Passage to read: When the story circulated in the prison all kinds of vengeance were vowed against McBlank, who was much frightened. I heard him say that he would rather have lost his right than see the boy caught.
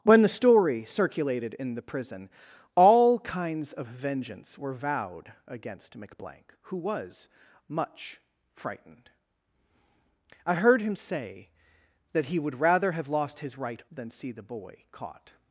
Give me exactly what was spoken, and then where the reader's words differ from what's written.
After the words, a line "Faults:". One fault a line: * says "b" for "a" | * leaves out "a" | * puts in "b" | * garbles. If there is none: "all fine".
When the story circulated in the prison all kinds of vengeance were vowed against McBlank, who was much frightened. I heard him say that he would rather have lost his right than see the boy caught.
Faults:
all fine